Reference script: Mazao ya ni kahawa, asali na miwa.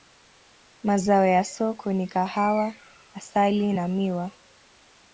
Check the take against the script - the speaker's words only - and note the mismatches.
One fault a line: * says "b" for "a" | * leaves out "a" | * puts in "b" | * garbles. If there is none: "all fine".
* puts in "soko"